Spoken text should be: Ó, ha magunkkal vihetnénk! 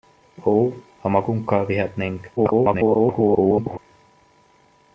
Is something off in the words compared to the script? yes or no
yes